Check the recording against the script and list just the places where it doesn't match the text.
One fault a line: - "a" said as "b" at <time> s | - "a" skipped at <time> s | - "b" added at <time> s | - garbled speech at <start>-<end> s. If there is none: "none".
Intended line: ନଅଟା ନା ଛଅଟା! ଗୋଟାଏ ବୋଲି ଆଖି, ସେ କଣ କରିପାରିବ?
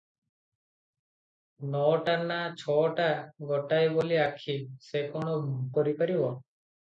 none